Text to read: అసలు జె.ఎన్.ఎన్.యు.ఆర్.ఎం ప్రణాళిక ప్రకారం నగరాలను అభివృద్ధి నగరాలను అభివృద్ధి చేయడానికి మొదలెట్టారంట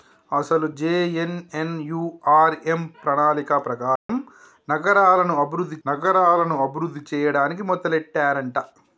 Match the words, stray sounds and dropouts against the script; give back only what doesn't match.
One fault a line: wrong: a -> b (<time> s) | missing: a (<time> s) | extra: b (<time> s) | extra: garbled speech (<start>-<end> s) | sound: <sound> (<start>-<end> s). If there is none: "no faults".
sound: dropout (4.0-4.1 s)